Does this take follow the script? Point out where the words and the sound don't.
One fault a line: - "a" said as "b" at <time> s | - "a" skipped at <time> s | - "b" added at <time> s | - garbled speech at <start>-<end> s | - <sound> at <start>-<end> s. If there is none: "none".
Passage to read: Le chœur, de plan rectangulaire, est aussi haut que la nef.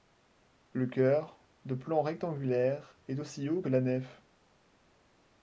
none